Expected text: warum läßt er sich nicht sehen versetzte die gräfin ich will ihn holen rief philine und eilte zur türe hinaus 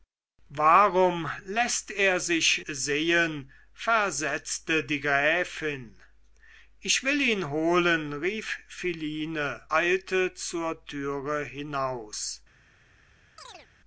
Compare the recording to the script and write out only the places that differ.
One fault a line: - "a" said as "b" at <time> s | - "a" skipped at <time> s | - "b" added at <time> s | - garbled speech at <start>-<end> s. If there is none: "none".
- "nicht" skipped at 2.6 s
- "und" skipped at 9.6 s